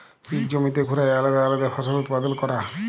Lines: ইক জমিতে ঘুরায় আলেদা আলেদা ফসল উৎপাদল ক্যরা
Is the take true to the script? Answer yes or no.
yes